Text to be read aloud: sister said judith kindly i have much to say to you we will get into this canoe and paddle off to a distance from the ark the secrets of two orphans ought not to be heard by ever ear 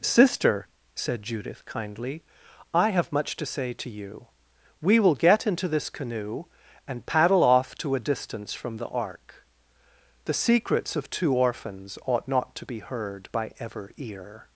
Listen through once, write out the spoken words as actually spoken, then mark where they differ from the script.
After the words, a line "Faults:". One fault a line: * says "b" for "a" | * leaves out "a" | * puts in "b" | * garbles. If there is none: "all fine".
sister said judith kindly i have much to say to you we will get into this canoe and paddle off to a distance from the ark the secrets of two orphans ought not to be heard by ever ear
Faults:
all fine